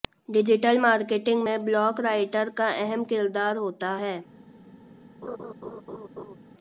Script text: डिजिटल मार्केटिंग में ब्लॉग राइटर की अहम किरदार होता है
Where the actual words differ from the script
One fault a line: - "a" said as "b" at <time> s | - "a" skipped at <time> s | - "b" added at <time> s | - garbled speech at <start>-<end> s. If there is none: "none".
- "की" said as "का" at 2.6 s